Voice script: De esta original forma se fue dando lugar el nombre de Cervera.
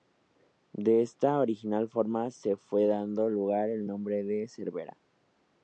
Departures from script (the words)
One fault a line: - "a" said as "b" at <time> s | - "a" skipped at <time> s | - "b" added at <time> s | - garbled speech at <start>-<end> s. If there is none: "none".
none